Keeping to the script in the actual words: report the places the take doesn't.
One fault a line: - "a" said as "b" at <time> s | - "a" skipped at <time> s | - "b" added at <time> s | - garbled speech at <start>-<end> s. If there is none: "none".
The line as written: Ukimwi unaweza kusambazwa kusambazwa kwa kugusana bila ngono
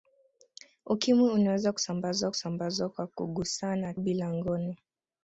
none